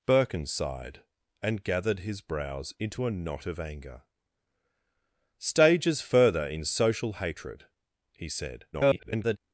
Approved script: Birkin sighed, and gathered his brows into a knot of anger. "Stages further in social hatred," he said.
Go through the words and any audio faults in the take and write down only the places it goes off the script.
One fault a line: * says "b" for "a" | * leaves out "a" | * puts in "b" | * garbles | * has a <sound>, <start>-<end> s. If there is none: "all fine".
* garbles